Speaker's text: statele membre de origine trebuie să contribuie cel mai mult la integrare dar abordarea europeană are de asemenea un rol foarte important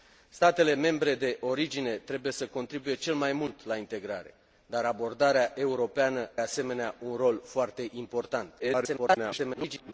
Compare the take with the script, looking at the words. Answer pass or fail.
fail